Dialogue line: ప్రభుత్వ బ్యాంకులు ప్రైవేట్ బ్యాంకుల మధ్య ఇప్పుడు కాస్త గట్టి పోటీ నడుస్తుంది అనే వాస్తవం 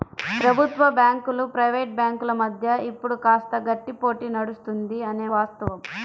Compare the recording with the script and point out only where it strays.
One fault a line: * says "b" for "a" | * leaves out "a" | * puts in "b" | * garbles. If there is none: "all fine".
all fine